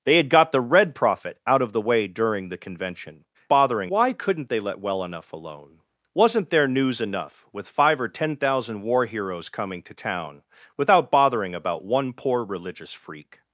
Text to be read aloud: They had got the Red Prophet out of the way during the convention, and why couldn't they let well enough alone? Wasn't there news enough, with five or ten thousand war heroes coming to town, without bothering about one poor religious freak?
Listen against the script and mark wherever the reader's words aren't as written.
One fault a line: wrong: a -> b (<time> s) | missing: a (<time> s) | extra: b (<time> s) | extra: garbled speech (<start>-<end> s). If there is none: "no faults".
wrong: and -> bothering (3.5 s)